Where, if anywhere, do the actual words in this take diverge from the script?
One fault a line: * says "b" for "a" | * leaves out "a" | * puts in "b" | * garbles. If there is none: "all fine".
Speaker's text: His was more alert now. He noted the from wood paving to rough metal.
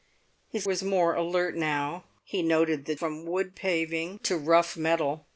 all fine